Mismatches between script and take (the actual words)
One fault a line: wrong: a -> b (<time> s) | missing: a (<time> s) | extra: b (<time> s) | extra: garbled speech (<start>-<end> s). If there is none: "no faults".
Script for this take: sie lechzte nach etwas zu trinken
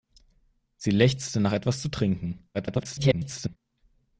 extra: garbled speech (2.5-3.6 s)